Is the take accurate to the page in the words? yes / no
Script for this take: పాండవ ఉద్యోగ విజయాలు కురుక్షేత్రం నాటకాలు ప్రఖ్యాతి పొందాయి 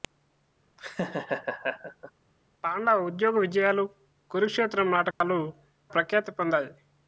yes